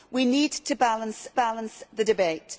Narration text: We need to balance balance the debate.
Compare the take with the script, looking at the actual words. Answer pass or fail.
pass